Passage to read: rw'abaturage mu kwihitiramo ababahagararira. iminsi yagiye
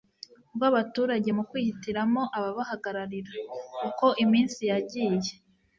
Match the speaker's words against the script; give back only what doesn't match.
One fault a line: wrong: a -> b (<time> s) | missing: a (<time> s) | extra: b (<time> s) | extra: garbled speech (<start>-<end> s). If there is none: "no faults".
extra: uko (3.9 s)